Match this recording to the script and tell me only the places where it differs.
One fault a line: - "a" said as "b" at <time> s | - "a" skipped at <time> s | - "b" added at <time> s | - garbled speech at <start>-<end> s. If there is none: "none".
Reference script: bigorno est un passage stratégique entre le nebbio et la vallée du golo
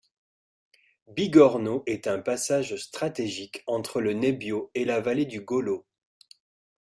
none